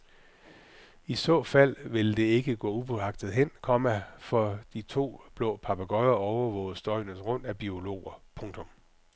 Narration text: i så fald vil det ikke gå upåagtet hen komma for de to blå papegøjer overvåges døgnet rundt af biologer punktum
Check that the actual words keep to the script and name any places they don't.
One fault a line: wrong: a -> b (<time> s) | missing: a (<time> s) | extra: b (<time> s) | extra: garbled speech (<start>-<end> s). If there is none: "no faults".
no faults